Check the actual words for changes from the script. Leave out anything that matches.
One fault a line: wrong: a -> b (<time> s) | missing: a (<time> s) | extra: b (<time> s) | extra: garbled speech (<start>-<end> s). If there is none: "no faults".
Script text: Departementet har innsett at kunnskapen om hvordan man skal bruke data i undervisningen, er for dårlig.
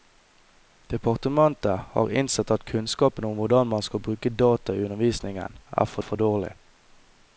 extra: for (6.0 s)